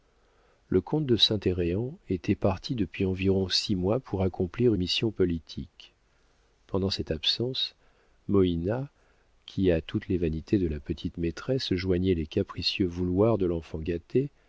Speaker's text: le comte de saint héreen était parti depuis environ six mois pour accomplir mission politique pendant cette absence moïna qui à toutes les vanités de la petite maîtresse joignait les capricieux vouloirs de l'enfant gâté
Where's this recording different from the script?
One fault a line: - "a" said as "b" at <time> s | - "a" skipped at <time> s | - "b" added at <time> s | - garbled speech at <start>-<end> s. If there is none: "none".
none